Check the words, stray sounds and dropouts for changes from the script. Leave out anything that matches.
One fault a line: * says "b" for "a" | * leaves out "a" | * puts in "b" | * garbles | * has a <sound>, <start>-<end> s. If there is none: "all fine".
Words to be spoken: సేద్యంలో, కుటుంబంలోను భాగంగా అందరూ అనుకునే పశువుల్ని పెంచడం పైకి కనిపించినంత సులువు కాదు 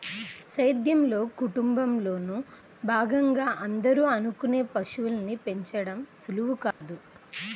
* leaves out "పైకి కనిపించినంత"
* has a dropout, 6.7-6.8 s